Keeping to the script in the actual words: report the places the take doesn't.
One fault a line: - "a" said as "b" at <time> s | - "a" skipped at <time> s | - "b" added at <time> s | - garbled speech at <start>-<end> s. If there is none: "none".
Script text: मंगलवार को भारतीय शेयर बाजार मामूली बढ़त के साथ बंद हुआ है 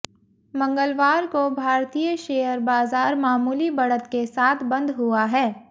none